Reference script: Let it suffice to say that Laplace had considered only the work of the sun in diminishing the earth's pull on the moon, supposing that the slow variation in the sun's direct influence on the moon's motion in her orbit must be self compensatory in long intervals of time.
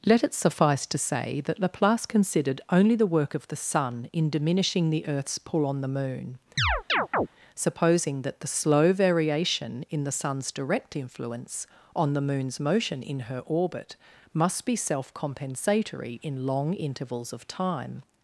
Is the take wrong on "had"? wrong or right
wrong